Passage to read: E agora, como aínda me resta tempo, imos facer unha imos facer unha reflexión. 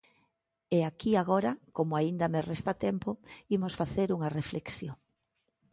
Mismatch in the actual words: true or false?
true